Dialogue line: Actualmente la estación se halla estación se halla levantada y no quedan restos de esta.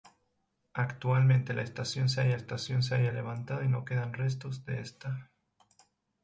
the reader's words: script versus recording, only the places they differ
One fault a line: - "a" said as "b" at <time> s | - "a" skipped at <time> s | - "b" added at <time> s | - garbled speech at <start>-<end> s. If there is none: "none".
none